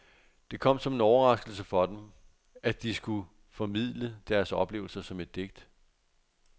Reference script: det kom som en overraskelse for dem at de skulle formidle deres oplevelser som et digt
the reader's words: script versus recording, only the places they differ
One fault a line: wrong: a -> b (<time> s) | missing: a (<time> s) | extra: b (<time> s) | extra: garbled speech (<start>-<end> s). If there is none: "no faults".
no faults